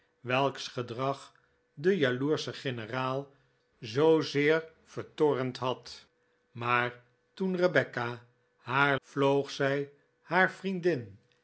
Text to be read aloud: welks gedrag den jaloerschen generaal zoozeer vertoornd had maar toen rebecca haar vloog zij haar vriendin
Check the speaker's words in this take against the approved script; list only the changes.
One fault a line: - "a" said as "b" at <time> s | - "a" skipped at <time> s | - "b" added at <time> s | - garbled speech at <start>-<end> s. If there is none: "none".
none